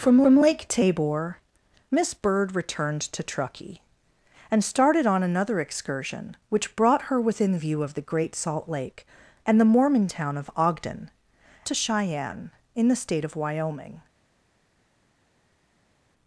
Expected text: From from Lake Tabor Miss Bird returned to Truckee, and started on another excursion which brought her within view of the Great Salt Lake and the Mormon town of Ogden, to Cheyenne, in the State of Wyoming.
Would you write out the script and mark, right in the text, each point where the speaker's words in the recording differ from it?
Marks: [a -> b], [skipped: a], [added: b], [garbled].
From from Lake Tabor Miss Bird returned to Truckee, and started on another excursion which brought her within view of the Great Salt Lake and the Mormon town of Ogden, to Cheyenne, in the State of Wyoming.